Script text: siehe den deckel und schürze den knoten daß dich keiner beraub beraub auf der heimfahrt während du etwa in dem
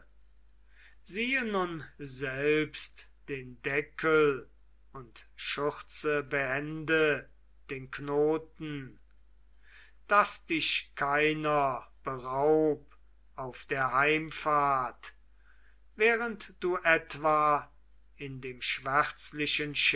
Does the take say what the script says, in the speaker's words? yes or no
no